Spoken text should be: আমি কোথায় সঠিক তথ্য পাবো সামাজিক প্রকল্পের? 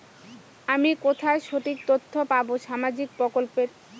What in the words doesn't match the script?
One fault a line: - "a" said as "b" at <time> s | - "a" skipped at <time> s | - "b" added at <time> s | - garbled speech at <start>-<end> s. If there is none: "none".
none